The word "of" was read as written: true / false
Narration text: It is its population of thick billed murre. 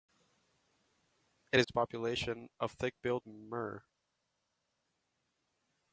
true